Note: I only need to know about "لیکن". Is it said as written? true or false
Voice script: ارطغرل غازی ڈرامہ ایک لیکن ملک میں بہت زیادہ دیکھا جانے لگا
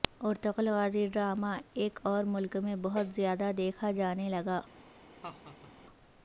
false